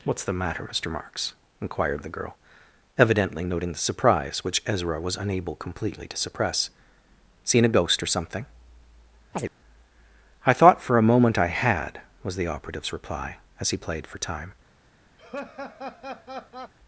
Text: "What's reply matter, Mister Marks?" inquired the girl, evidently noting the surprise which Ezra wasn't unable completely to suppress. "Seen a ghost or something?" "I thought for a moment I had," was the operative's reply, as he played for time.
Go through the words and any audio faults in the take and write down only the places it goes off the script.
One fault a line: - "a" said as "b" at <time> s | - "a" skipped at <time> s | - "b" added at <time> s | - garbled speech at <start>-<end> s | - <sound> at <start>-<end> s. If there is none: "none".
- "reply" said as "the" at 0.2 s
- "wasn't" said as "was" at 5.0 s
- chirp at 9.3-9.5 s
- laugh at 15.2-16.7 s